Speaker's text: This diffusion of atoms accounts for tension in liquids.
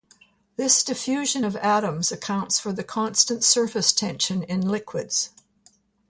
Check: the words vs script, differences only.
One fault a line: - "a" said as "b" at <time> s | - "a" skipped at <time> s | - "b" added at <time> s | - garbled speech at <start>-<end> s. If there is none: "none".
- "the constant surface" added at 2.7 s